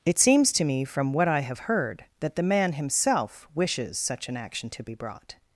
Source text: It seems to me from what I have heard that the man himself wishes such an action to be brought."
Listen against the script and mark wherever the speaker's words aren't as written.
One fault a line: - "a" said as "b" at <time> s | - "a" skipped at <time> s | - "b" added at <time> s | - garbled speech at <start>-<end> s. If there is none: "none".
none